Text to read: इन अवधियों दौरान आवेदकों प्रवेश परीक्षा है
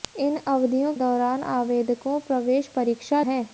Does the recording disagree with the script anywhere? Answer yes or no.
no